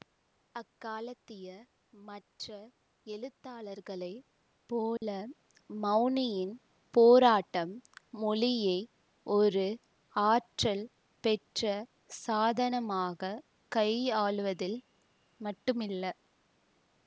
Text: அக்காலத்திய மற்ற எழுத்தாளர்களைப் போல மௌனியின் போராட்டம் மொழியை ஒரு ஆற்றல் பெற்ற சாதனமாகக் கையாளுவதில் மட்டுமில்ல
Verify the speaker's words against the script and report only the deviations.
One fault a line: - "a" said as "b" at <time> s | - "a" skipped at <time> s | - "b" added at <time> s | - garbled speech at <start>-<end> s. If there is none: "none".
none